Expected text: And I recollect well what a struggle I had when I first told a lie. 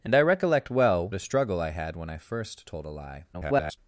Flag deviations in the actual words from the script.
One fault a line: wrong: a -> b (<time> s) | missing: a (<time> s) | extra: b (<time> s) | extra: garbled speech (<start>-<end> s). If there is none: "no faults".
missing: what (1.1 s)
extra: garbled speech (3.3-3.8 s)